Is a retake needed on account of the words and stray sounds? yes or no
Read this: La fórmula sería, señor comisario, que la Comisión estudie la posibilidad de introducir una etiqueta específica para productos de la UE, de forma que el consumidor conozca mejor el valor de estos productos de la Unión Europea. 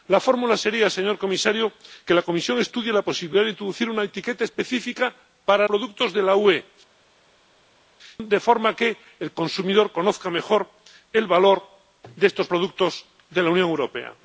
no